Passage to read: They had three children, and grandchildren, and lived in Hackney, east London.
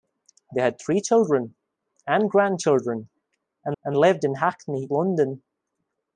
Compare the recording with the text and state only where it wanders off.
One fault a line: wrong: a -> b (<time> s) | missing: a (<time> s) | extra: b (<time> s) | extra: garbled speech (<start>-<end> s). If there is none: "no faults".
extra: and (3.8 s)
missing: east (4.9 s)